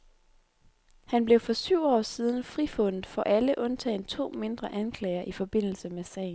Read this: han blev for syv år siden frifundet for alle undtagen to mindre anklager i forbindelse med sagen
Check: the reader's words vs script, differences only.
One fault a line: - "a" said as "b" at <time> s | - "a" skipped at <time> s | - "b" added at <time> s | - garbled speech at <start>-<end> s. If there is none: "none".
none